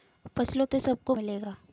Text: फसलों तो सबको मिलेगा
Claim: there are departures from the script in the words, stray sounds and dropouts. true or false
false